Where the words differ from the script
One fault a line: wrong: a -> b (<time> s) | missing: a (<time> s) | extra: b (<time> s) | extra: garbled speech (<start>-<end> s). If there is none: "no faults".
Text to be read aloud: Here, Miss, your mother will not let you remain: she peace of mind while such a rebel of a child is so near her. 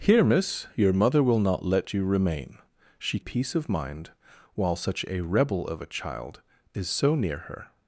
no faults